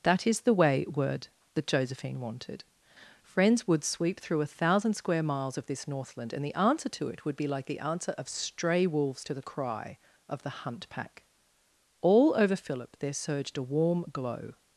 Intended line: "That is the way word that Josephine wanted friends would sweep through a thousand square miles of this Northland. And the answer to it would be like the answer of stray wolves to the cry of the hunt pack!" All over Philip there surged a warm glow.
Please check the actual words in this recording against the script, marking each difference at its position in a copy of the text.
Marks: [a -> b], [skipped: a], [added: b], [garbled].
"That is the way word that Josephine wanted friends would sweep through a thousand square miles of this Northland. And the answer to it would be like the answer of stray wolves to the cry of the hunt pack!" All over Philip there surged a warm glow.